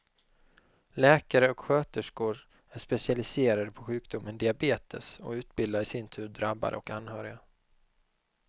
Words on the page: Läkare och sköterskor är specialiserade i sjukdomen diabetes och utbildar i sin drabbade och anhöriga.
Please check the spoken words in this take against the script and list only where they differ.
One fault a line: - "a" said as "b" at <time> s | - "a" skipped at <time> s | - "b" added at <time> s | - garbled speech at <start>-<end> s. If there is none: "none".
- "i" said as "på" at 3.7 s
- "tur" added at 6.1 s